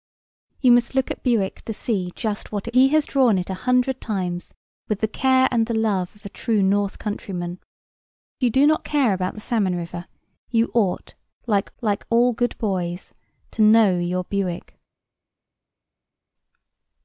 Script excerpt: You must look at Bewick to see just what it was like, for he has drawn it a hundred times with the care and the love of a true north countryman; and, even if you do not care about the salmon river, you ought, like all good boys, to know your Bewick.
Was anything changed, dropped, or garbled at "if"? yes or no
yes